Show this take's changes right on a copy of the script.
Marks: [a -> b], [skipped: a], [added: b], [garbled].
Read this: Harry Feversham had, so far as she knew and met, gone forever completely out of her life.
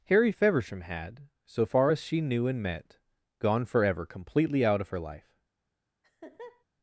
Harry Feversham had, so far as she knew and met, gone forever completely out of her life.